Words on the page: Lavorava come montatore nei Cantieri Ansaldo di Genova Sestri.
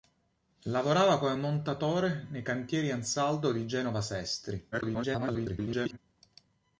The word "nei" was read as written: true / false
true